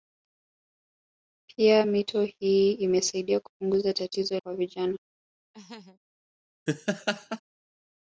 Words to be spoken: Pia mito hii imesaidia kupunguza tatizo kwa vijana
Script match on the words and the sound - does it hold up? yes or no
no